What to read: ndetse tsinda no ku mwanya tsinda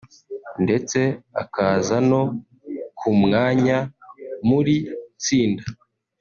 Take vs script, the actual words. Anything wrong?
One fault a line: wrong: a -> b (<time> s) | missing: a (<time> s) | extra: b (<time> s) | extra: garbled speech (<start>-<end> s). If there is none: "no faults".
wrong: tsinda -> akaza (1.4 s)
extra: muri (4.5 s)